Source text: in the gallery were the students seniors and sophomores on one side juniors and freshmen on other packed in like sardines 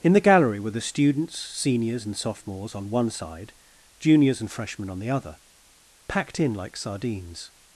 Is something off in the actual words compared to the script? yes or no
yes